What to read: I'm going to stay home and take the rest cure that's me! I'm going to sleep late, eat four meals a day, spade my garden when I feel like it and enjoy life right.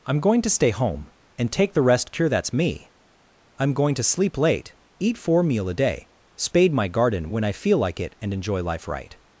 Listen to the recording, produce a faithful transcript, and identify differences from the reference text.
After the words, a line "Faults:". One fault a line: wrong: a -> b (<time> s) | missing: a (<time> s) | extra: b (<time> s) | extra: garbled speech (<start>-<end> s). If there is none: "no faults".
I'm going to stay home and take the rest cure that's me! I'm going to sleep late, eat four meal a day, spade my garden when I feel like it and enjoy life right.
Faults:
wrong: meals -> meal (5.4 s)